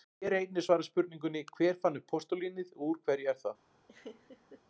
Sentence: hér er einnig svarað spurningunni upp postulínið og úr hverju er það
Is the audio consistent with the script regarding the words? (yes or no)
no